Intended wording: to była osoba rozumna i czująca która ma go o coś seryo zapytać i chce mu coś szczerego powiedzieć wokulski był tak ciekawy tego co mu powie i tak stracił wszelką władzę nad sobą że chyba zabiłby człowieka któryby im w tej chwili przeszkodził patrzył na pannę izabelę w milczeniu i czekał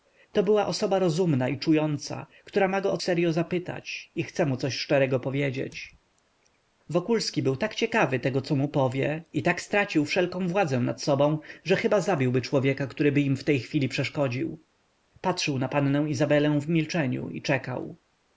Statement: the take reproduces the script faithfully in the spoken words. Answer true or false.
false